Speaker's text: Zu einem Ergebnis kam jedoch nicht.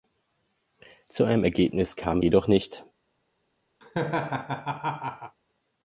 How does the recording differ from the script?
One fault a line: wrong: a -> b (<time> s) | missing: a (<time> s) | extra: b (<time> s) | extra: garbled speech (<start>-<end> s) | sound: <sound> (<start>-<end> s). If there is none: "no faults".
sound: laugh (3.8-5.4 s)